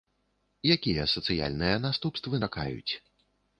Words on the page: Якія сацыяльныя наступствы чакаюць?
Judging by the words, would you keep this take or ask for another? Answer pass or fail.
pass